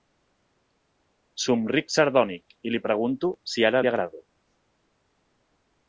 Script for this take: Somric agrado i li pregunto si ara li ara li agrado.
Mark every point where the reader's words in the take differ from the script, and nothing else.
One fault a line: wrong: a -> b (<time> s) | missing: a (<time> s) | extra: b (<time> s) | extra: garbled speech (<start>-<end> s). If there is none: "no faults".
wrong: agrado -> sardònic (2.0 s)
missing: ara li (3.9 s)